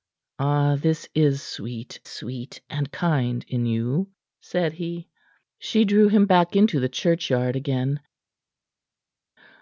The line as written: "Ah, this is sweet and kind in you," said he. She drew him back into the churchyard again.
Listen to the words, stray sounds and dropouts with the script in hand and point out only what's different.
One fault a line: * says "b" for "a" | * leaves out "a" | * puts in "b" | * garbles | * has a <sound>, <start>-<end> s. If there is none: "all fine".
* puts in "sweet"